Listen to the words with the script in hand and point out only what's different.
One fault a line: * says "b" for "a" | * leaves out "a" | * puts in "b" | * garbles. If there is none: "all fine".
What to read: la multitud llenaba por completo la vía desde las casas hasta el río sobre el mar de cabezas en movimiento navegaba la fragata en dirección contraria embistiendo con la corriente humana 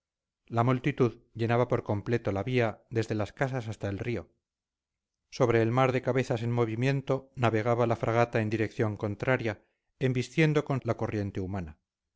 all fine